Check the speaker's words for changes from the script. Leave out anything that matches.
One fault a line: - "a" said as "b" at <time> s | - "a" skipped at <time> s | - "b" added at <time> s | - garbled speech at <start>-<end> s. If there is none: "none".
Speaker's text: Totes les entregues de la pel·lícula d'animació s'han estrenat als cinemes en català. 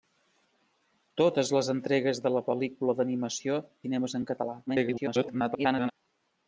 - "s'han estrenat als" skipped at 3.6 s
- garbled speech at 4.7-5.9 s